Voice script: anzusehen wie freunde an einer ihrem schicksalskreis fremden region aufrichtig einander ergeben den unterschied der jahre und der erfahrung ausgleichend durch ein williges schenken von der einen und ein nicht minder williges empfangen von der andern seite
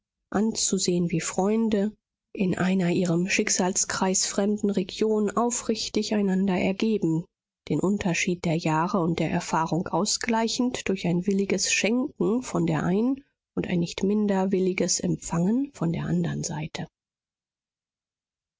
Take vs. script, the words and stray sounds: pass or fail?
fail